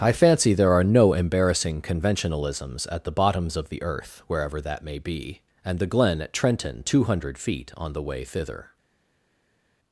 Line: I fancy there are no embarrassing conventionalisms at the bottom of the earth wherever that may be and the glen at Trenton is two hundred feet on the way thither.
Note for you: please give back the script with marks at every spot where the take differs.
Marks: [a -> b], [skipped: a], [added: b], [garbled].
I fancy there are no embarrassing conventionalisms at the [bottom -> bottoms] of the earth wherever that may be and the glen at Trenton [skipped: is] two hundred feet on the way thither.